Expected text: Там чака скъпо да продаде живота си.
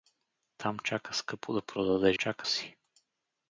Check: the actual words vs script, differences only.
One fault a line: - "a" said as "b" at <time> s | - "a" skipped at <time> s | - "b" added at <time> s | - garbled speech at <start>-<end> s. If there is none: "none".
- "живота" said as "чака" at 2.1 s